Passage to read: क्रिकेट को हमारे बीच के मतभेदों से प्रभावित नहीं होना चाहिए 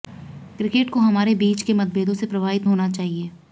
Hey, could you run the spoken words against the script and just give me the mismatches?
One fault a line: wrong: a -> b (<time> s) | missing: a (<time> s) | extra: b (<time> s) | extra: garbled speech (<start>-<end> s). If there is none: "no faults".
missing: नहीं (2.7 s)